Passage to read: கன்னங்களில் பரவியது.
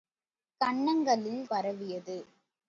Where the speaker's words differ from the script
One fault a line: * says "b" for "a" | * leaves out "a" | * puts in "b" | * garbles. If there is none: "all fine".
all fine